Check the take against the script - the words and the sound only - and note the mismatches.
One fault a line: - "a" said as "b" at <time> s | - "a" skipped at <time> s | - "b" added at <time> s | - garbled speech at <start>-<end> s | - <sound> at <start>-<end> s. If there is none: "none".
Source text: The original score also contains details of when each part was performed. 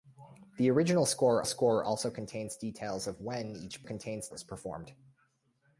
- "score" added at 1.4 s
- "part" said as "contains" at 3.8 s